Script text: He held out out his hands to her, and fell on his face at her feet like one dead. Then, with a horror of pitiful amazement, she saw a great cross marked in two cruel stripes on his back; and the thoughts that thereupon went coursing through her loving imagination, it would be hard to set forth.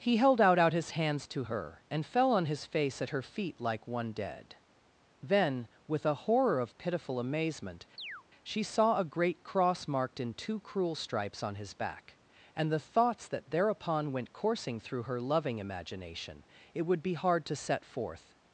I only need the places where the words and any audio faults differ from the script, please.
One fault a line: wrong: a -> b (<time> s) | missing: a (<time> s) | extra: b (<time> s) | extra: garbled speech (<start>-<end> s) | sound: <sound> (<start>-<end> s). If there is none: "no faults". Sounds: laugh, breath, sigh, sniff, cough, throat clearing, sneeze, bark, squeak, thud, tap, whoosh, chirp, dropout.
sound: chirp (8.0-8.2 s)